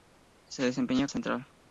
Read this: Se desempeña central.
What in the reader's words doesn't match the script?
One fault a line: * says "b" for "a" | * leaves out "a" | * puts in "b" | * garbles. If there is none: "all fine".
all fine